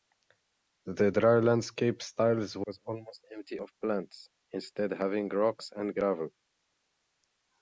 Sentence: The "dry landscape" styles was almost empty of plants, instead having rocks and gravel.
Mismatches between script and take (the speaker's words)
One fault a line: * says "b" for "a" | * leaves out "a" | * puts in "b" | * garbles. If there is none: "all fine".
all fine